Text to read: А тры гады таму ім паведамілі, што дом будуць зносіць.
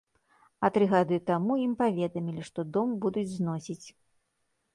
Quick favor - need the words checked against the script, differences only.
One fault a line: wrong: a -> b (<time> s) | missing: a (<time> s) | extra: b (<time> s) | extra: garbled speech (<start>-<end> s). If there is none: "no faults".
no faults